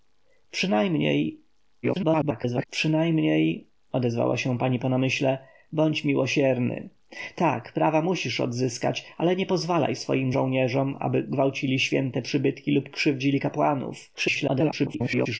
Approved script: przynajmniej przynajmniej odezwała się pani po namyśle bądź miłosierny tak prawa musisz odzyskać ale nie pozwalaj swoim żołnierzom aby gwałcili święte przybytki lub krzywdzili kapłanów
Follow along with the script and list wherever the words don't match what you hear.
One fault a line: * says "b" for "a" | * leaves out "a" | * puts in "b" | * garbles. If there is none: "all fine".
* garbles
* garbles